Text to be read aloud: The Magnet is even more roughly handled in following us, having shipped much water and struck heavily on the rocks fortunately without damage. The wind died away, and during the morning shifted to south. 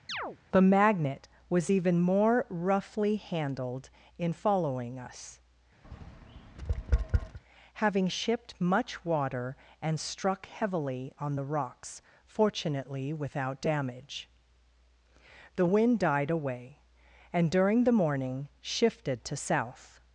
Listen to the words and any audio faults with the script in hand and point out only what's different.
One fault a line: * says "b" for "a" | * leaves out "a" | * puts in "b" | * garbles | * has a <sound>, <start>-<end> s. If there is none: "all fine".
* has a chirp, 0.1-0.4 s
* says "was" for "is"
* has a tap, 5.8-7.4 s